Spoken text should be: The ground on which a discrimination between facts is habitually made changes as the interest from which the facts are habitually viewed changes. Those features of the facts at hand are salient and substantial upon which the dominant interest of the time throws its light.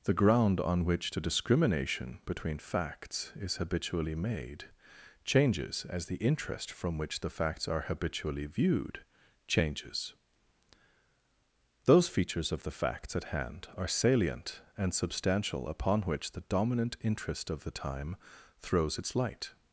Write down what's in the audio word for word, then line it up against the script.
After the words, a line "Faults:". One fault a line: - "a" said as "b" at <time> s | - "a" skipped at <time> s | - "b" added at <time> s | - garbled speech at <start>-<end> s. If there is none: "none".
The ground on which the discrimination between facts is habitually made changes as the interest from which the facts are habitually viewed changes. Those features of the facts at hand are salient and substantial upon which the dominant interest of the time throws its light.
Faults:
- "a" said as "the" at 1.1 s